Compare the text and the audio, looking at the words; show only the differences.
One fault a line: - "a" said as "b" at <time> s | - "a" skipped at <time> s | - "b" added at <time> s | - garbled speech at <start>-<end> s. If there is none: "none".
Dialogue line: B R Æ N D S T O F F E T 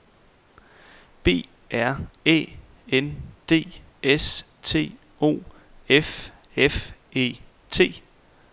none